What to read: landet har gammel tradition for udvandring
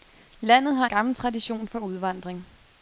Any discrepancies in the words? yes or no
no